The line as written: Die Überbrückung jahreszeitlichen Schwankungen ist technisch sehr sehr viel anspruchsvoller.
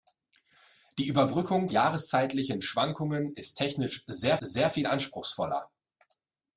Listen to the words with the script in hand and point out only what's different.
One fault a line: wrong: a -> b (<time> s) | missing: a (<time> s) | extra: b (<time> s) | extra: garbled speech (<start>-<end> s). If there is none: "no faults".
no faults